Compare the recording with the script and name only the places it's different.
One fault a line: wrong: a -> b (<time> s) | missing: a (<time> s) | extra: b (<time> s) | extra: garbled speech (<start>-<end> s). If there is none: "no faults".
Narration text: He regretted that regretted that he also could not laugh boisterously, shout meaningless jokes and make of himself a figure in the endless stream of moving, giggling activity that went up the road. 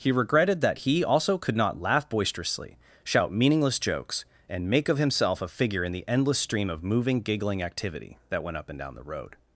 missing: regretted that (0.8 s)
extra: and down (8.7 s)